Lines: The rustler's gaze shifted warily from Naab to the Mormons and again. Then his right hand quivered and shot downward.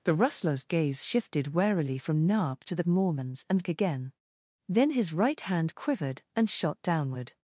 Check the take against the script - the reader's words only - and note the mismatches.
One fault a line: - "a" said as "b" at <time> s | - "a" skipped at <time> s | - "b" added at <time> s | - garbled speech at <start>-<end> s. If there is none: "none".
none